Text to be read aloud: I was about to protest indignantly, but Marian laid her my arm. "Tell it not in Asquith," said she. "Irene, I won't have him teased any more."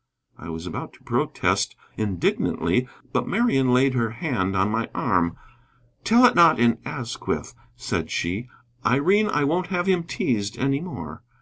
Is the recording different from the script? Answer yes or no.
yes